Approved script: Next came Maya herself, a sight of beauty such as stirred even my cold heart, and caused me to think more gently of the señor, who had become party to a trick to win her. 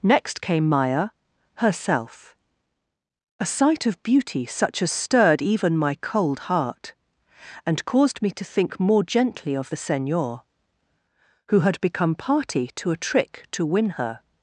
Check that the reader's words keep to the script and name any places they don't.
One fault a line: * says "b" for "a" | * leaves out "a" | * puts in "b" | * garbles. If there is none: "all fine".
all fine